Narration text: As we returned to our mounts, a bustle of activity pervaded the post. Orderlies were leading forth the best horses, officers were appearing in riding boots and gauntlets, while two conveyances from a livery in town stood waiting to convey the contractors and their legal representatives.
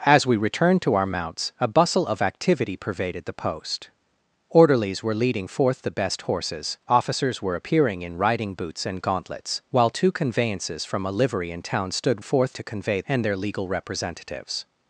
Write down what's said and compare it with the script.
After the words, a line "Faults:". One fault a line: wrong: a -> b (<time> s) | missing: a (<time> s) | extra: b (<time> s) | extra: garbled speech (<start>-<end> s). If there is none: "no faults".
As we returned to our mounts, a bustle of activity pervaded the post. Orderlies were leading forth the best horses, officers were appearing in riding boots and gauntlets, while two conveyances from a livery in town stood forth to convey and their legal representatives.
Faults:
wrong: waiting -> forth (12.2 s)
missing: the contractors (13.0 s)